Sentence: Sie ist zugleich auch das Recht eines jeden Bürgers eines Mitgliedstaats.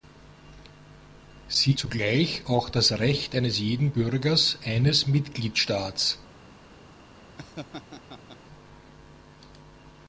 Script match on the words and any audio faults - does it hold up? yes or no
no